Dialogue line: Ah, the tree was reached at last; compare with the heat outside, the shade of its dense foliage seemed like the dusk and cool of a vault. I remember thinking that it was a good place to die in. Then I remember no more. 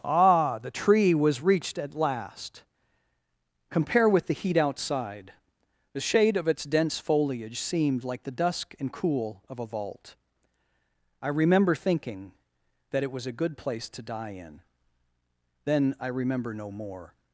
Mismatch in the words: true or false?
false